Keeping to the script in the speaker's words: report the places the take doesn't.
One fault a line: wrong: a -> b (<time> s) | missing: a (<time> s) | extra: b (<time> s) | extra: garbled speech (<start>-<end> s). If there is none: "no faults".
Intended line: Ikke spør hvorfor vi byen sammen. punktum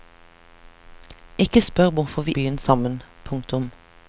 no faults